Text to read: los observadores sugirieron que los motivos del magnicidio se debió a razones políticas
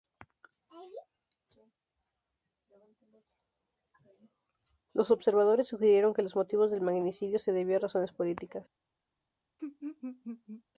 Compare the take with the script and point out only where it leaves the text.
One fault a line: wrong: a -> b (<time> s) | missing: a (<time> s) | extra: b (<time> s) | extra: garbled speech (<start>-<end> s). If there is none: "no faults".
no faults